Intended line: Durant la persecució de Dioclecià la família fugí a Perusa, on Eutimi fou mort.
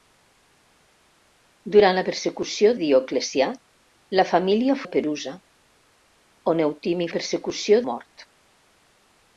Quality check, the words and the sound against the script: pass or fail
fail